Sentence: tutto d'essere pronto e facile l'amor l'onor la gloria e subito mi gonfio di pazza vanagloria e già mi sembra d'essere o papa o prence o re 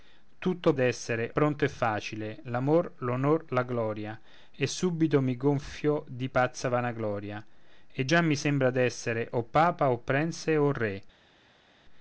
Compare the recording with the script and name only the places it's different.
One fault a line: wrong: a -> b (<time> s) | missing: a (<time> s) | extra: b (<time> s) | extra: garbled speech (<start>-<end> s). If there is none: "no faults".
no faults